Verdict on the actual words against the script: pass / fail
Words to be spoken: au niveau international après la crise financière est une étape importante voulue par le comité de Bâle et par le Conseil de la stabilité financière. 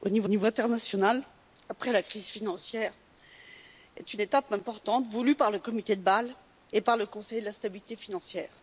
fail